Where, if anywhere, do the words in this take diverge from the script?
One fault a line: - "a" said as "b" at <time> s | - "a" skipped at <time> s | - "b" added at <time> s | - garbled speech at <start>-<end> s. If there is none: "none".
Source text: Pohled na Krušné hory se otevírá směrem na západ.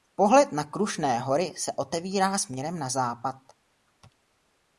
none